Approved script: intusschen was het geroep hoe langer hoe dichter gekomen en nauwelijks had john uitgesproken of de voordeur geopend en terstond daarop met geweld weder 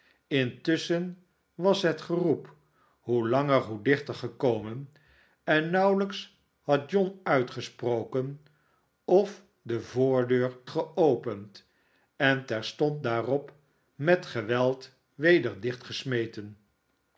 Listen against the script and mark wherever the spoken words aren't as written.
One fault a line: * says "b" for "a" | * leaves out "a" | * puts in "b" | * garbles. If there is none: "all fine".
all fine